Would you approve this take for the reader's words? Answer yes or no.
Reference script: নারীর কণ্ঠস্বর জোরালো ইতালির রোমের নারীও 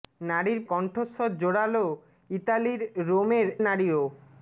yes